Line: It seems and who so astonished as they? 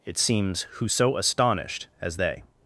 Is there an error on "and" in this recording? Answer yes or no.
yes